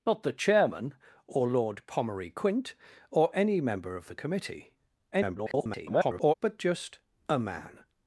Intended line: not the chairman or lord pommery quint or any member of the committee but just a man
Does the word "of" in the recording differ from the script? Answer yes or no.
no